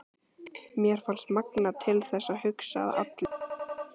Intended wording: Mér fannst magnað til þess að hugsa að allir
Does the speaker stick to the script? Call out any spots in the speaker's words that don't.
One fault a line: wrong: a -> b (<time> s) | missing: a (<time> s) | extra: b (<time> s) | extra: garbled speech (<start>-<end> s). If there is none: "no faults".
no faults